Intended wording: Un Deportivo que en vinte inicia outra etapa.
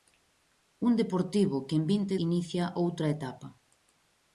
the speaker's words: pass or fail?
pass